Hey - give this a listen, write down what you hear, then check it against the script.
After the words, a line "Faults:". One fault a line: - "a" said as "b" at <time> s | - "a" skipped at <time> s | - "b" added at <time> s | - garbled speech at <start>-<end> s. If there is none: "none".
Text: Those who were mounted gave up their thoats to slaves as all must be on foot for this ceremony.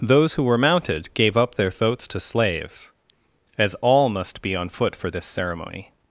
Those who were mounted gave up their thoats to slaves as all must be on foot for this ceremony.
Faults:
none